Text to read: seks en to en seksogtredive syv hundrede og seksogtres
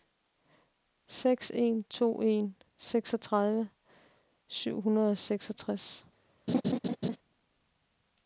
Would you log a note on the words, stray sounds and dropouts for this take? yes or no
yes